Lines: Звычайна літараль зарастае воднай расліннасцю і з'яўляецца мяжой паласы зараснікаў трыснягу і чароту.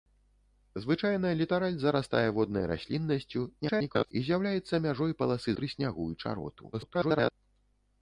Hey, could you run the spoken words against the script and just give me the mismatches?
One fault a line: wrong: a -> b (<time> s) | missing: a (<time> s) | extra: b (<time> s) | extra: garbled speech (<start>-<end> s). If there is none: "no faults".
extra: garbled speech (3.6-4.1 s)
missing: зараснікаў (5.5 s)
extra: garbled speech (6.7-7.3 s)